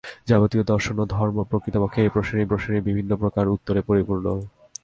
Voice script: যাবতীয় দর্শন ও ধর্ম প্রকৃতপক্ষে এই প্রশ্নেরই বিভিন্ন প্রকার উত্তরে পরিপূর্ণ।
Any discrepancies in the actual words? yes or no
yes